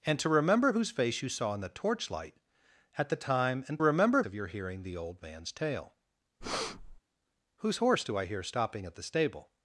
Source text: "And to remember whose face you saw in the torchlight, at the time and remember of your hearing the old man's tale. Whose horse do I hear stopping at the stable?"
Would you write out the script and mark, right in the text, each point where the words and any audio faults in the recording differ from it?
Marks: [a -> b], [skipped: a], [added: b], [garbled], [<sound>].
"And to remember whose face you saw in the torchlight, at the time and remember of your hearing the old man's tale. [breath] Whose horse do I hear stopping at the stable?"